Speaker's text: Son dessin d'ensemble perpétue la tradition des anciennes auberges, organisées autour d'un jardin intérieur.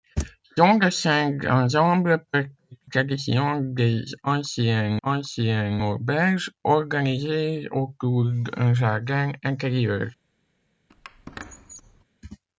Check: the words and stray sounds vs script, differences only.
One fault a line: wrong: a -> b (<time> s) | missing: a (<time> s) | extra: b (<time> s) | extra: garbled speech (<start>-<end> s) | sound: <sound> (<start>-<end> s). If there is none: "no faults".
missing: la (2.5 s)
extra: anciennes (5.0 s)
sound: squeak (10.9-12.0 s)